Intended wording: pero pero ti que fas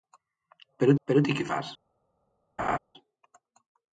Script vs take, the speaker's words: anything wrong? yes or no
no